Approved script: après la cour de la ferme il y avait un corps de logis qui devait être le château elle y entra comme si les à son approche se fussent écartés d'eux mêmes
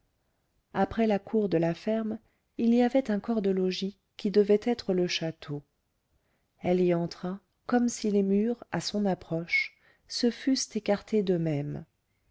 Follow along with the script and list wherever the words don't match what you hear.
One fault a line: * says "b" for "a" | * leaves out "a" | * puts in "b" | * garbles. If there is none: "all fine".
* puts in "murs"